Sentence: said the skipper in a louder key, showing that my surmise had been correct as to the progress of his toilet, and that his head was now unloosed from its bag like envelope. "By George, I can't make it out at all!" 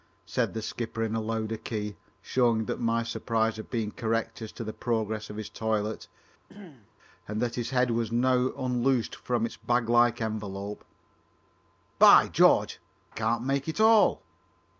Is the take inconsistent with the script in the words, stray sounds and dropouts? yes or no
yes